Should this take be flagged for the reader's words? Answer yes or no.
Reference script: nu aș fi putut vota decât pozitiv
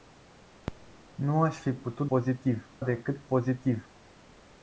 yes